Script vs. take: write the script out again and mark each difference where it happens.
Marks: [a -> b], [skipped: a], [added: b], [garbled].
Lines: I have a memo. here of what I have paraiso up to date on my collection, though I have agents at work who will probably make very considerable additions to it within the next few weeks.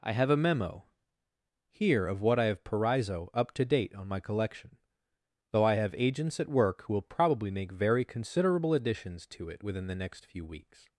I have a memo. here of what I have paraiso up to date on my collection, though I have agents at work who will probably make very considerable additions to it within the next few weeks.